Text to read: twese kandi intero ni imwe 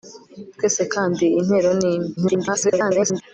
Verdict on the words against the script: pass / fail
fail